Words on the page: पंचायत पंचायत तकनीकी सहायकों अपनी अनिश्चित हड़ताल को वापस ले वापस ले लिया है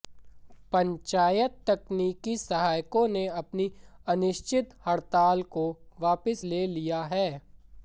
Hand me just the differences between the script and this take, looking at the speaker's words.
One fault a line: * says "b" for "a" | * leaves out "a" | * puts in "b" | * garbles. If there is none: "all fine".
* leaves out "पंचायत"
* puts in "ने"
* leaves out "वापस ले"